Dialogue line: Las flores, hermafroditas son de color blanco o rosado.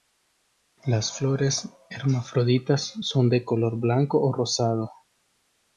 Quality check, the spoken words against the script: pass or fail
pass